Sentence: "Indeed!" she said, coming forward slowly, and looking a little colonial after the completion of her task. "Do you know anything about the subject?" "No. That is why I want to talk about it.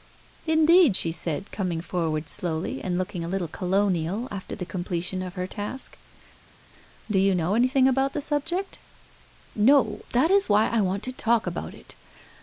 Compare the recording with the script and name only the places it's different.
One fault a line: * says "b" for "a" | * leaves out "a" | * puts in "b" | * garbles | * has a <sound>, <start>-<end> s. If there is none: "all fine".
all fine